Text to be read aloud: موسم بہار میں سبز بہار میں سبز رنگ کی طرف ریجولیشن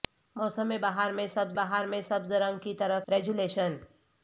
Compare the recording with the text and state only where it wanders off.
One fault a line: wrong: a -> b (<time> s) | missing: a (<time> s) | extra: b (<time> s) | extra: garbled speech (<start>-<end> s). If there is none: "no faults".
no faults